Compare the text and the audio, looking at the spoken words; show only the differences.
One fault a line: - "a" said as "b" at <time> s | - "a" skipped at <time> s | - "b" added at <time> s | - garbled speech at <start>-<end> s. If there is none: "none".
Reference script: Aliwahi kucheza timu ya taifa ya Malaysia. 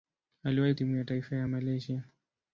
- "kucheza" skipped at 0.7 s